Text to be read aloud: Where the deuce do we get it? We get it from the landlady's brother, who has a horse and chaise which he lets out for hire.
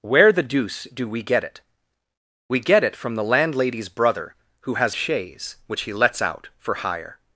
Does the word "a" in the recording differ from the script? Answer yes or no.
yes